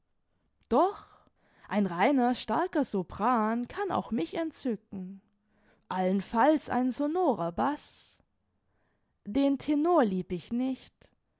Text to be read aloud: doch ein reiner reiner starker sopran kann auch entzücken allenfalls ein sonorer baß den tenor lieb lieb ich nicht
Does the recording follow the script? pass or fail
fail